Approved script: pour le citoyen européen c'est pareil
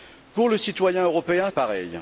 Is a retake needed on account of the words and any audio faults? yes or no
yes